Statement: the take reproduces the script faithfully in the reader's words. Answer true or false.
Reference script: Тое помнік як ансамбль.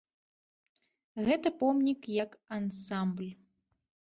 false